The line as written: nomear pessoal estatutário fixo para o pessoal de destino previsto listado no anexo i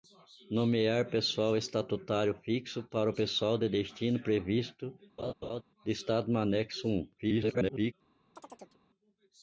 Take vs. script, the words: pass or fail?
fail